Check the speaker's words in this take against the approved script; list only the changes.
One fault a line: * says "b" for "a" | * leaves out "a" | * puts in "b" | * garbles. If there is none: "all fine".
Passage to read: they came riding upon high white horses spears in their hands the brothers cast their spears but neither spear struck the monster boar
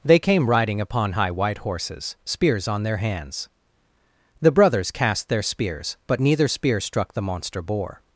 * says "on" for "in"